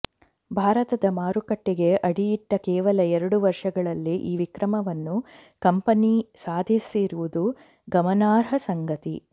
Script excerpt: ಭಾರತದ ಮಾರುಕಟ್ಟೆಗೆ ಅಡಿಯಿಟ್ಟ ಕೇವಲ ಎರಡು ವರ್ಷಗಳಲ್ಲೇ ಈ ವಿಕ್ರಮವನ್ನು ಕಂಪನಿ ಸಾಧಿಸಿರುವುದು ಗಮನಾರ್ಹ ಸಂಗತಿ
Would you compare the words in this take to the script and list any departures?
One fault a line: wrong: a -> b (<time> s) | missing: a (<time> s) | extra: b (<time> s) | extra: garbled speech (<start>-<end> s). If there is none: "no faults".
no faults